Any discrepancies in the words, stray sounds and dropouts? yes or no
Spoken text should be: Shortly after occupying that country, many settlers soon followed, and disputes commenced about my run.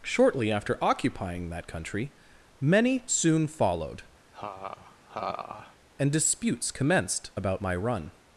yes